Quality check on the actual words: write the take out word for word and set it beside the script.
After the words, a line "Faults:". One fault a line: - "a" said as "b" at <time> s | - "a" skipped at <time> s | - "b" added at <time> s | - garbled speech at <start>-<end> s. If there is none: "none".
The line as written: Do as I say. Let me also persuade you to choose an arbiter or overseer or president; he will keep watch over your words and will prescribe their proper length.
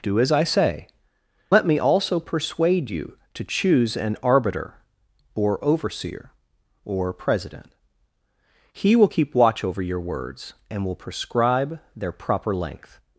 Do as I say. Let me also persuade you to choose an arbiter or overseer or president; he will keep watch over your words and will prescribe their proper length.
Faults:
none